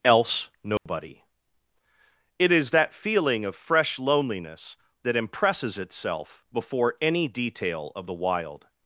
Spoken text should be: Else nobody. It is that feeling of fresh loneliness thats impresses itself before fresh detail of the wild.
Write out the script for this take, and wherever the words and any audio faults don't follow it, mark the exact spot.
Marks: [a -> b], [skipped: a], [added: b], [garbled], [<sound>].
Else nobody. [dropout] It is that feeling of fresh loneliness [thats -> that] impresses itself before [fresh -> any] detail of the wild.